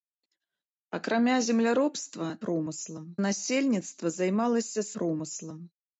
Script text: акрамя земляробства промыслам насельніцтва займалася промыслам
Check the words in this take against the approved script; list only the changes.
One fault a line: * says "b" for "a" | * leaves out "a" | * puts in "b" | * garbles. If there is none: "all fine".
all fine